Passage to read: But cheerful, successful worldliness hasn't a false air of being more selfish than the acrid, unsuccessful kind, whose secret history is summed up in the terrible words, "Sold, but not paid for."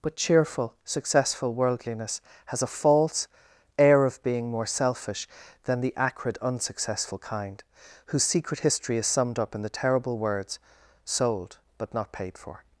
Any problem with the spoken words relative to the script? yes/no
yes